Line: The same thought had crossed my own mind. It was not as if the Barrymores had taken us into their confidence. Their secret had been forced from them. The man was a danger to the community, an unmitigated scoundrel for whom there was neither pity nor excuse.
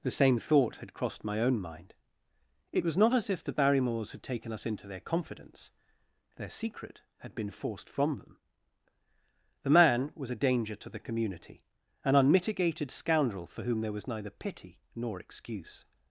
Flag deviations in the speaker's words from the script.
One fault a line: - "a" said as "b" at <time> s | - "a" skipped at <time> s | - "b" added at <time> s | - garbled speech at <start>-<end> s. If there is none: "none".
none